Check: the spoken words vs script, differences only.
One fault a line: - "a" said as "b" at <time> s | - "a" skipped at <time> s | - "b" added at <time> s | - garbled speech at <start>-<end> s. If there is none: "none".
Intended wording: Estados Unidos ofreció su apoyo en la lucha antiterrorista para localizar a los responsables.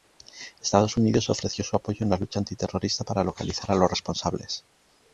none